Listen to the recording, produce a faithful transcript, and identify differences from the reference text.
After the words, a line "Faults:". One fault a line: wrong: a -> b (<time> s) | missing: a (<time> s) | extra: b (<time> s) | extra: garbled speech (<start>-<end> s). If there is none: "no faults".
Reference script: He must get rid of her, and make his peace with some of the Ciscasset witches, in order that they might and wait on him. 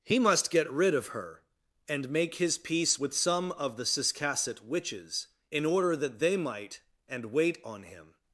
He must get rid of her, and make his peace with some of the Ciscasset witches, in order that they might and wait on him.
Faults:
no faults